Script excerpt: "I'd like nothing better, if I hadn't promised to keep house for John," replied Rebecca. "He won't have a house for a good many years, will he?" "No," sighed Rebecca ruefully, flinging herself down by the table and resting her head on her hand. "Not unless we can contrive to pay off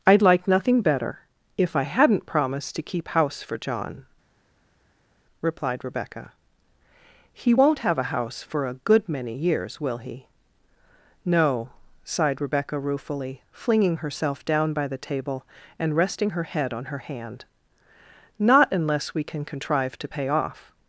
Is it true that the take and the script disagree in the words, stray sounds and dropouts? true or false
false